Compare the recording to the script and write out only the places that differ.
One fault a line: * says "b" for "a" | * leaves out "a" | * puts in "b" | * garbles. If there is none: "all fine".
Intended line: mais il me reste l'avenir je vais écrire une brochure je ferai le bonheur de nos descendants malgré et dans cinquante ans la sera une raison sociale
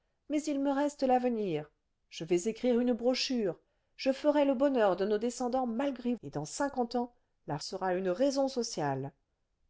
all fine